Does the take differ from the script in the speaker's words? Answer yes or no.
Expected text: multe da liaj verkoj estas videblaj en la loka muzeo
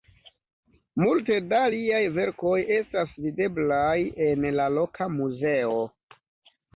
no